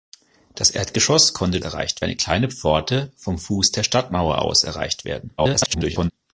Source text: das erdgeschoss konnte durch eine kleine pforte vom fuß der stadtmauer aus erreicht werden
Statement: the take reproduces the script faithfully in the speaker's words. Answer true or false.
false